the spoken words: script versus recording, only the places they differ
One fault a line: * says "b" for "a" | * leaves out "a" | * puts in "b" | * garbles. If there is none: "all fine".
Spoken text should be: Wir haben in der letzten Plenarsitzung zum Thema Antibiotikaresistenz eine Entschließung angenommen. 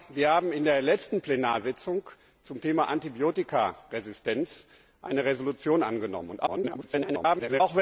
* garbles